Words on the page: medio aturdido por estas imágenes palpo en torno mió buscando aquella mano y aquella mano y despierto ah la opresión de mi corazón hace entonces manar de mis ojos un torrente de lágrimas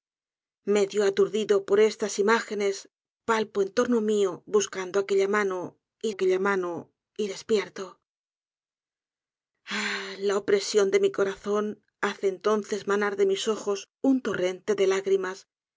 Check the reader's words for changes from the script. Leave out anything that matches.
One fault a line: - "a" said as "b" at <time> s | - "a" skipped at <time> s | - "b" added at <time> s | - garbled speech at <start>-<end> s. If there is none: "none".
none